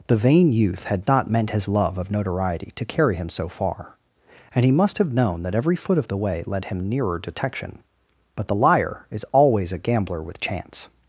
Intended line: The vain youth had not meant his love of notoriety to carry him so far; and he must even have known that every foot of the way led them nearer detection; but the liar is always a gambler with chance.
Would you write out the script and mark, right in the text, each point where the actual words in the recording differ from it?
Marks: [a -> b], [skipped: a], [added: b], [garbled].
The vain youth had not meant his love of notoriety to carry him so far; and he must [skipped: even] have known that every foot of the way led [them -> him] nearer detection; but the liar is always a gambler with chance.